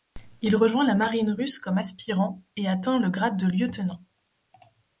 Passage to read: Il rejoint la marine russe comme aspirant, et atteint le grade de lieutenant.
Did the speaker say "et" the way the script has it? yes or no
yes